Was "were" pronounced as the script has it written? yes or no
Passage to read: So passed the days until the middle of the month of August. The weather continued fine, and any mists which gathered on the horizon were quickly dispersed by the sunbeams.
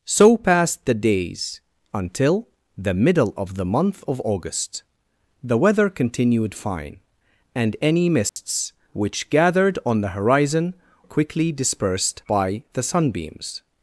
no